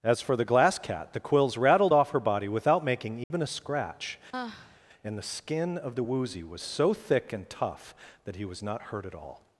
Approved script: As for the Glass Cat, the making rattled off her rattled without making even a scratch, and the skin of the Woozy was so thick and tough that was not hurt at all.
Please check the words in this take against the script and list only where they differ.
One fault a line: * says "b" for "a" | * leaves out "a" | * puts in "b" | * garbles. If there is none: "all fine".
* says "quills" for "making"
* says "body" for "rattled"
* puts in "he"